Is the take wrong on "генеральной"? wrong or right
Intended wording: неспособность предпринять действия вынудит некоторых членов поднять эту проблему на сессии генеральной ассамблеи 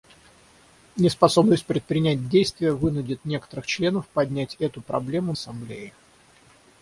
wrong